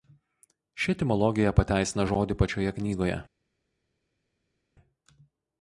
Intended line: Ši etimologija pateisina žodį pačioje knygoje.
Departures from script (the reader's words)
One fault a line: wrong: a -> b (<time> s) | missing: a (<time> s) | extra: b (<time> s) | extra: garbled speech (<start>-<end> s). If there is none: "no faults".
no faults